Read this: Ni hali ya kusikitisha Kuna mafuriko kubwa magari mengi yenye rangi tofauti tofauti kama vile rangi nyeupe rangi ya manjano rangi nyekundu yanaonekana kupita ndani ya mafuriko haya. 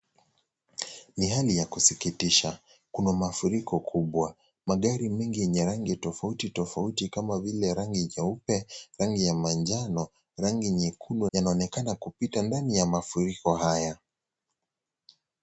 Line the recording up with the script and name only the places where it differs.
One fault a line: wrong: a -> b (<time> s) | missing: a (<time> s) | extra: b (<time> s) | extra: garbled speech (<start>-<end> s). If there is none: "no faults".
no faults